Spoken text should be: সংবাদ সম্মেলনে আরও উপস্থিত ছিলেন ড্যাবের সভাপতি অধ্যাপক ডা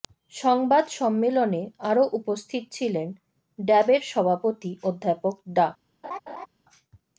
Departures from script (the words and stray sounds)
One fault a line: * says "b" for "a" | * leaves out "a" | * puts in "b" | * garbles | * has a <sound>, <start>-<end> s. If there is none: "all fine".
* has a laugh, 6.0-6.5 s